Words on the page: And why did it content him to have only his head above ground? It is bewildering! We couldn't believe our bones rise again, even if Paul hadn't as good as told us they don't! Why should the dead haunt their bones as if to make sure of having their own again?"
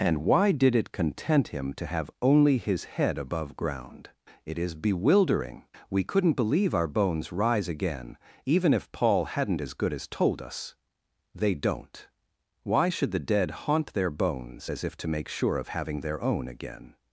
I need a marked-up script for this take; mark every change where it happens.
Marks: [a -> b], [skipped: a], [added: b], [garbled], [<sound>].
And why did it content him to have only his head above ground? It is bewildering! We couldn't believe our bones rise again, even if Paul hadn't as good as told us they don't! Why should the dead haunt their bones as if to make sure of having their own again?"